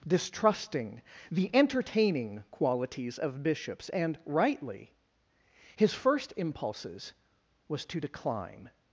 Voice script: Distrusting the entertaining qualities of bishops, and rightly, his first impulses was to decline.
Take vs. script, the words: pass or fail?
pass